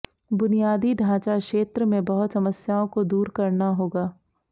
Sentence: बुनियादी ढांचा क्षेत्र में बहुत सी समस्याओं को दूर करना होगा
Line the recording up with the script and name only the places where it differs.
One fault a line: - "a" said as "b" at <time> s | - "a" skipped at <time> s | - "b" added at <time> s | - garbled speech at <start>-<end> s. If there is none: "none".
- "सी" skipped at 2.3 s